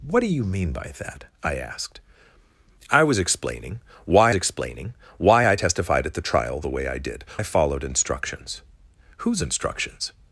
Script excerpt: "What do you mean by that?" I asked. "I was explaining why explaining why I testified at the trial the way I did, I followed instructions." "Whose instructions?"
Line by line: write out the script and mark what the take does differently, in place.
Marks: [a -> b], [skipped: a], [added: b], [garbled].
"What do you mean by that?" I asked. "I was explaining why explaining why I testified at the trial the way I did, I followed instructions." "Whose instructions?"